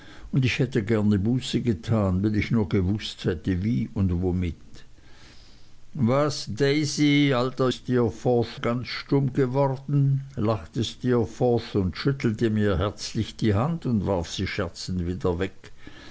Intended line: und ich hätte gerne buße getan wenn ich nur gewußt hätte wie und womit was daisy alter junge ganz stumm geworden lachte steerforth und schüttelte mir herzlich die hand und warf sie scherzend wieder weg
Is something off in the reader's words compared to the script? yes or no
yes